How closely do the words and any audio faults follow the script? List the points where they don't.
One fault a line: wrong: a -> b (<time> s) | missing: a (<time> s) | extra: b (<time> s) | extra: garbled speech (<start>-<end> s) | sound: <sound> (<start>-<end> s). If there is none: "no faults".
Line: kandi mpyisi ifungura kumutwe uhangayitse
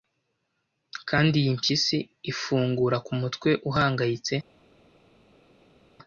extra: iyi (1.4 s)